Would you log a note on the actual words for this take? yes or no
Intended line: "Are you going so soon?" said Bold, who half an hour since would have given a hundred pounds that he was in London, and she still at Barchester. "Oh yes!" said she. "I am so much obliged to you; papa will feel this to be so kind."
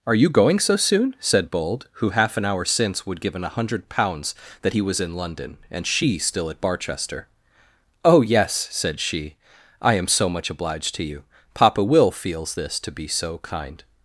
yes